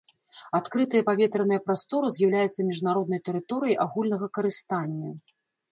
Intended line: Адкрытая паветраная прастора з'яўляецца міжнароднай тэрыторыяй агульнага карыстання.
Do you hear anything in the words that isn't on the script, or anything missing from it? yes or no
no